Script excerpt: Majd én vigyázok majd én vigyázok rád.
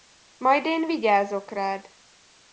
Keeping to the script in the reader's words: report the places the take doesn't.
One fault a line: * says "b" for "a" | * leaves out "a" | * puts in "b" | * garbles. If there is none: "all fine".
* leaves out "majd én vigyázok"